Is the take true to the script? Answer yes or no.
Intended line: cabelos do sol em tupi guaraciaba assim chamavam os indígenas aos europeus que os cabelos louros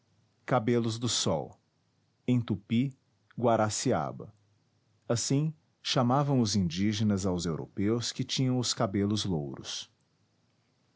no